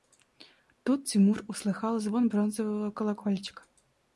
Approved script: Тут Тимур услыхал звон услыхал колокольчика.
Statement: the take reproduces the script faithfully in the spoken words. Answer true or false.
false